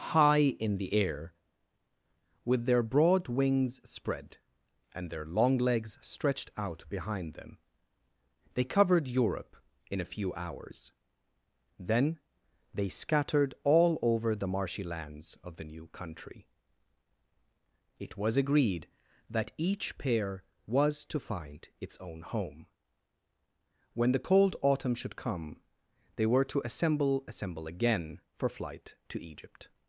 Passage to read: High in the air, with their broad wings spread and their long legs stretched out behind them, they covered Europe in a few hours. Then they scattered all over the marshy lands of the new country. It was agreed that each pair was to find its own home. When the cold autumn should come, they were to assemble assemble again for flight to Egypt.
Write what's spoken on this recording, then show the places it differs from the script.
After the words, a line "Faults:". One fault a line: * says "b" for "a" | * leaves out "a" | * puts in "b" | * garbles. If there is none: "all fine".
High in the air, with their broad wings spread and their long legs stretched out behind them, they covered Europe in a few hours. Then they scattered all over the marshy lands of the new country. It was agreed that each pair was to find its own home. When the cold autumn should come, they were to assemble assemble again for flight to Egypt.
Faults:
all fine